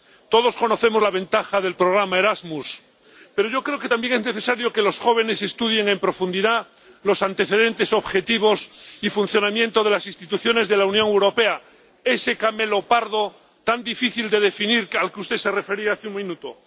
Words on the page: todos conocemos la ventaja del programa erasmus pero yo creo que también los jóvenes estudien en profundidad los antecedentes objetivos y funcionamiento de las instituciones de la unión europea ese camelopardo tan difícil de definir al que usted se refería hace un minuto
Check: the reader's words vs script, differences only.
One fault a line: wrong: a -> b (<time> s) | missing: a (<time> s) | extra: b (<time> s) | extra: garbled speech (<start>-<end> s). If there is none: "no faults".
extra: es necesario que (4.1 s)